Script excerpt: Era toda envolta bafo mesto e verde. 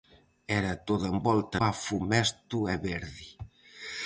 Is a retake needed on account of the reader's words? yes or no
no